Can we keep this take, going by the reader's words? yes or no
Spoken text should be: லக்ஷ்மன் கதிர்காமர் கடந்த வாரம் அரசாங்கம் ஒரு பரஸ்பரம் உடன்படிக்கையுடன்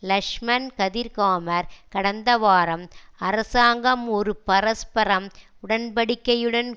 yes